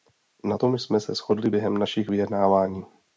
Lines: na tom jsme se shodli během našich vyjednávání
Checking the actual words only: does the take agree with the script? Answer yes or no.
yes